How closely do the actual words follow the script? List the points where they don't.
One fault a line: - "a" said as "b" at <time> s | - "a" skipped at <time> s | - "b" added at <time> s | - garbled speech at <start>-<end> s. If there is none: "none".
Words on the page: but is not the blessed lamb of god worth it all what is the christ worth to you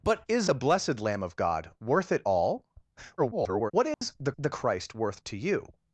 - "not" skipped at 0.5 s
- garbled speech at 3.2-3.7 s
- "the" added at 4.4 s